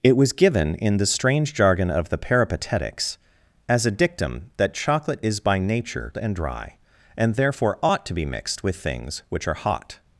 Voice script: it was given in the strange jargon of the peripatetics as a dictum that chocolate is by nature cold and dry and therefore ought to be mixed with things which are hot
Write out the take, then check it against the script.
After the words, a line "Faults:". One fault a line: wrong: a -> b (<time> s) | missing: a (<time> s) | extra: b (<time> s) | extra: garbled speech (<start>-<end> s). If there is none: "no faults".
it was given in the strange jargon of the peripatetics as a dictum that chocolate is by nature and dry and therefore ought to be mixed with things which are hot
Faults:
missing: cold (6.1 s)